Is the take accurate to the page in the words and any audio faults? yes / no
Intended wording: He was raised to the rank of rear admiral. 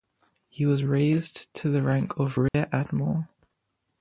no